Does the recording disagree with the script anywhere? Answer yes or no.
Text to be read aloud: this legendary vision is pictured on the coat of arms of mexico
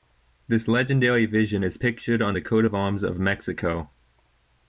no